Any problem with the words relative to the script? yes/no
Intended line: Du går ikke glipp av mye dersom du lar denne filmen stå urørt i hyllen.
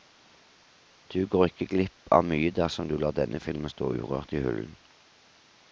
no